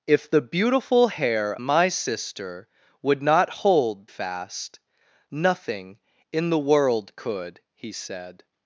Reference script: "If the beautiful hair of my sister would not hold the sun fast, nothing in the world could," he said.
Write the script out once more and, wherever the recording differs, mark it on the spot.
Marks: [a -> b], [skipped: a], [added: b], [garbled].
"If the beautiful hair [skipped: of] my sister would not hold [skipped: the sun] fast, nothing in the world could," he said.